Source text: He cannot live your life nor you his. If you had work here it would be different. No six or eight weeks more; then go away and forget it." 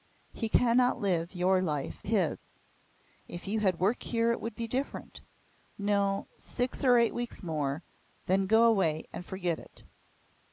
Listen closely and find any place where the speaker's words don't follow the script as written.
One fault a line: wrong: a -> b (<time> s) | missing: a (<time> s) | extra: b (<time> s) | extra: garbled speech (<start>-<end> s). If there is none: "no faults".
missing: nor you (2.0 s)